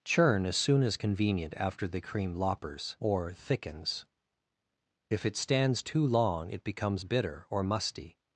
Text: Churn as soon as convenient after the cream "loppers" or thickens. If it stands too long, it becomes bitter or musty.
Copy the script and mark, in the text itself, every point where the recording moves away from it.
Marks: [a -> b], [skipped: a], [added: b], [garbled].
Churn as soon as convenient after the cream "loppers" or thickens. If it stands too long, it becomes bitter or musty.